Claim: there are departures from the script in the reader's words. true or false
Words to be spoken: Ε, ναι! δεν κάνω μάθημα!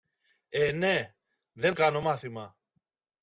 false